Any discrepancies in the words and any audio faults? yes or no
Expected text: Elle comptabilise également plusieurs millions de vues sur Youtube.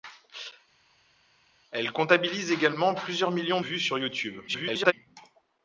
yes